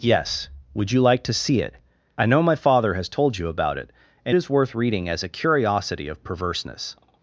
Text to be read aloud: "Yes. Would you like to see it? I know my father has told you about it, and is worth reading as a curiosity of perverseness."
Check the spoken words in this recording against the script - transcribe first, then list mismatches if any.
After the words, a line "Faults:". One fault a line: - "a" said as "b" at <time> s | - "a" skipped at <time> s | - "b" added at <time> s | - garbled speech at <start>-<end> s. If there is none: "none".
"Yes. Would you like to see it? I know my father has told you about it, and is worth reading as a curiosity of perverseness."
Faults:
none